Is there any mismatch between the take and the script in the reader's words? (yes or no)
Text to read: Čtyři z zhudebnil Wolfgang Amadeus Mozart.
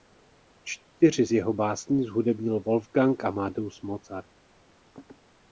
yes